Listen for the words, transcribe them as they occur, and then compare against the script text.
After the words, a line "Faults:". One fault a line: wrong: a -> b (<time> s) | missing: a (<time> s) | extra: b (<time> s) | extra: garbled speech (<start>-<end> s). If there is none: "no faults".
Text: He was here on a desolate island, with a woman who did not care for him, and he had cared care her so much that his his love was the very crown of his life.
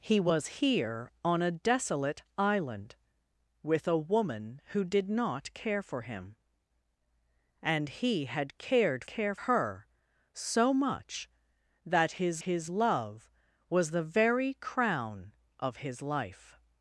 He was here on a desolate island, with a woman who did not care for him, and he had cared care her so much that his his love was the very crown of his life.
Faults:
no faults